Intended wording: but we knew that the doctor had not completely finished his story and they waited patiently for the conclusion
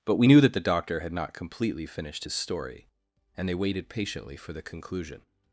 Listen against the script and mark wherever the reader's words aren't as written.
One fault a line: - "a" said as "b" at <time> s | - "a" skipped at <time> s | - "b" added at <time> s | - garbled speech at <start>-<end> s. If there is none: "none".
none